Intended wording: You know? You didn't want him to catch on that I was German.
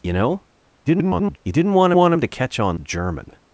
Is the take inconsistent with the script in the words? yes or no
yes